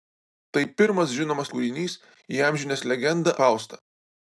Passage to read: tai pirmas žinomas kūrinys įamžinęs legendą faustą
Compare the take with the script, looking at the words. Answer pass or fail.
pass